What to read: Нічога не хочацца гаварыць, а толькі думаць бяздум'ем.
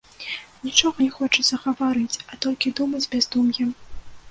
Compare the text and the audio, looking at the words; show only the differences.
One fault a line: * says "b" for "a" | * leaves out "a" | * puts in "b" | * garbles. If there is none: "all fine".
all fine